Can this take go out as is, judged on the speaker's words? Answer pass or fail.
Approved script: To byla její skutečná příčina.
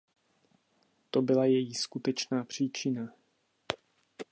pass